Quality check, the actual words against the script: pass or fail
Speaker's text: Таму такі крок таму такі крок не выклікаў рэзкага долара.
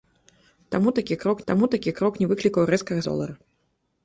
pass